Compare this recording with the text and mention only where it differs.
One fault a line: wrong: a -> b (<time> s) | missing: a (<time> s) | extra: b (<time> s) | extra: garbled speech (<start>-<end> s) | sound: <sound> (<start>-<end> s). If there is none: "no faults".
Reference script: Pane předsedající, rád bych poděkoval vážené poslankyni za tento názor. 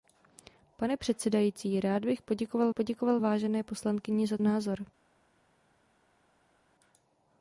extra: poděkoval (2.7 s)
missing: tento (4.4 s)